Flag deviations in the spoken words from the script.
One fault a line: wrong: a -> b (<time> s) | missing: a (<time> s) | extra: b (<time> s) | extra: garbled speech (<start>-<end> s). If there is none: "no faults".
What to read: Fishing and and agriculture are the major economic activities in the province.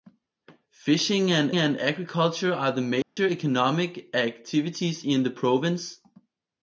no faults